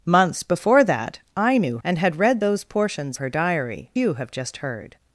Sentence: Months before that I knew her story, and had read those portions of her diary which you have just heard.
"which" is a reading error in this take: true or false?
true